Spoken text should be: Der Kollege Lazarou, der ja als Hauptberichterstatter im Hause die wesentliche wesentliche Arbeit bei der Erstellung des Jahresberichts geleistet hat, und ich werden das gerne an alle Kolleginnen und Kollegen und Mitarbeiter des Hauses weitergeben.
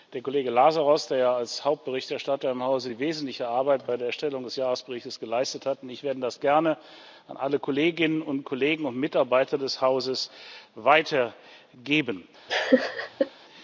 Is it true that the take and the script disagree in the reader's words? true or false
true